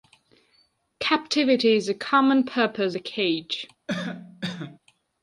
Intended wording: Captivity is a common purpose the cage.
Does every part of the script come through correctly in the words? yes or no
yes